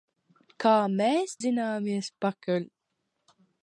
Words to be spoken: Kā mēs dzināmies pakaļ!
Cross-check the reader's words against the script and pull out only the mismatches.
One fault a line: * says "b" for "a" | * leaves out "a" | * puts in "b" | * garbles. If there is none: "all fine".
all fine